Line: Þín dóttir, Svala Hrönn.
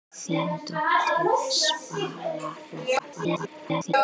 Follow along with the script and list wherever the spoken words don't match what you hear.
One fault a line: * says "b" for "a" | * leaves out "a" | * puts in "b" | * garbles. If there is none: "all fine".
* garbles